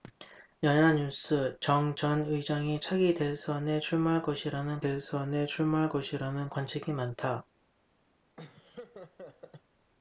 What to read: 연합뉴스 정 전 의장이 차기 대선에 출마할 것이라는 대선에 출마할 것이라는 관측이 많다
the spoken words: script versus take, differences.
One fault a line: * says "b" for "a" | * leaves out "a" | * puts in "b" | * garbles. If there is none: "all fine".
all fine